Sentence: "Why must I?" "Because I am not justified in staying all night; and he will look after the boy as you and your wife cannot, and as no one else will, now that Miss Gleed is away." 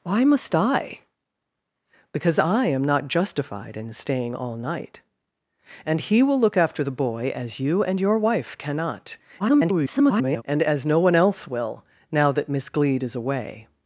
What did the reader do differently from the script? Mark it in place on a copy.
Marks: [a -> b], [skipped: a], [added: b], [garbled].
"Why must I?" "Because I am not justified in staying all night; and he will look after the boy as you and your wife cannot, [garbled] and as no one else will, now that Miss Gleed is away."